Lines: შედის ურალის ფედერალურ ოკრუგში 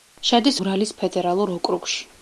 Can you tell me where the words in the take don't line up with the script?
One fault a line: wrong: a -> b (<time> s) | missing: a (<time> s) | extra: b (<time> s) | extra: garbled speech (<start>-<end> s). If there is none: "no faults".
no faults